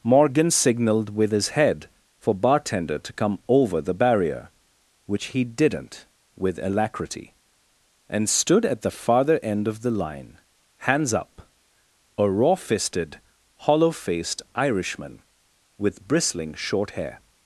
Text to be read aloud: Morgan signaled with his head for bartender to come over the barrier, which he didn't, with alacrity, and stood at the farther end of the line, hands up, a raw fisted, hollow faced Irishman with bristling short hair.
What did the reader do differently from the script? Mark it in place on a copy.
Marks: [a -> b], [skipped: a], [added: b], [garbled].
Morgan signaled with his head for bartender to come over the barrier, which he didn't, with alacrity, and stood at the farther end of the line, hands up, a raw fisted, hollow faced Irishman with bristling short hair.